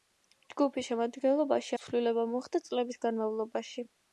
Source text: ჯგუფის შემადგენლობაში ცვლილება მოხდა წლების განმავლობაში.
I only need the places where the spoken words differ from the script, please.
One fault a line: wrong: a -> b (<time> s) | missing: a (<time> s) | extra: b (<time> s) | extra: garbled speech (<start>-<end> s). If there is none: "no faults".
no faults